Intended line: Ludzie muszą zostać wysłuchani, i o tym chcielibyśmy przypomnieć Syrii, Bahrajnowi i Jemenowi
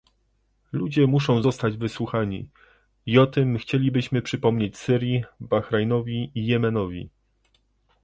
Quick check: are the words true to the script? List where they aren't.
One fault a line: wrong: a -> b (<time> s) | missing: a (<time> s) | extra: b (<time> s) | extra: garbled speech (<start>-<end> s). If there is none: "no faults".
no faults